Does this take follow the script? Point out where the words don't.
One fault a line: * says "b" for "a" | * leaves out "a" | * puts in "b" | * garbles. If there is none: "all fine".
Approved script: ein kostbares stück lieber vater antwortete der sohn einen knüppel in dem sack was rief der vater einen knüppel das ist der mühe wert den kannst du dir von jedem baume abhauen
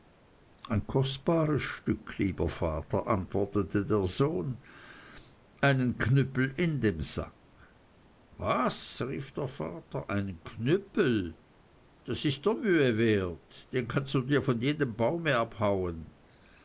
all fine